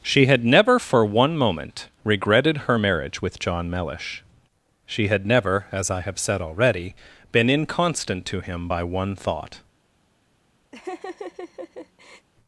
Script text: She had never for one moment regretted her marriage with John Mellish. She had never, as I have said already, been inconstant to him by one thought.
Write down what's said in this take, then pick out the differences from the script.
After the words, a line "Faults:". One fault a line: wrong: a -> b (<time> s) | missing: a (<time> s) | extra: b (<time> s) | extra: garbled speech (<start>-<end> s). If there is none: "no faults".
She had never for one moment regretted her marriage with John Mellish. She had never, as I have said already, been inconstant to him by one thought.
Faults:
no faults